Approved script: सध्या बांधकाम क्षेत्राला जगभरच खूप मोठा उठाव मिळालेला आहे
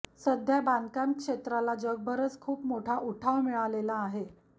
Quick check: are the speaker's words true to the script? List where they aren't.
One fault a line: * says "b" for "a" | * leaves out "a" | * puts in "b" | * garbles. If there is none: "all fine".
all fine